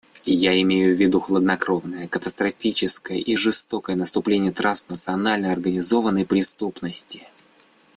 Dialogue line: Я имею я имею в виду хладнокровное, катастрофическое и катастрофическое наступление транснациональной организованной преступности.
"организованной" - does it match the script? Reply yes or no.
yes